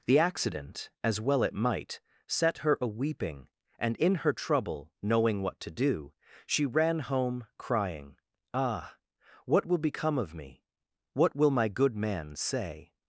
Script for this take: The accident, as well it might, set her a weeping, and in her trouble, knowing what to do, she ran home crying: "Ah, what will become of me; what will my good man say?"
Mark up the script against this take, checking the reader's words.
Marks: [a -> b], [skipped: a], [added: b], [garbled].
The accident, as well it might, set her a weeping, and in her trouble, knowing what to do, she ran home crying: "Ah, what will become of me; what will my good man say?"